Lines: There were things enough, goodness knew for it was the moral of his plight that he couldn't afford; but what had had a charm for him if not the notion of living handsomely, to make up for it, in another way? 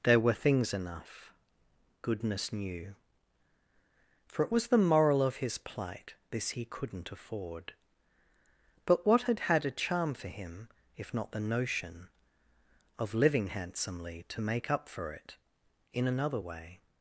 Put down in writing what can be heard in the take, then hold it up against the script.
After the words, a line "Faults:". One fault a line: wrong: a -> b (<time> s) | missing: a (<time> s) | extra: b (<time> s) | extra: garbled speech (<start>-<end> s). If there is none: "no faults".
There were things enough, goodness knew for it was the moral of his plight this he couldn't afford; but what had had a charm for him if not the notion of living handsomely, to make up for it, in another way?
Faults:
wrong: that -> this (6.3 s)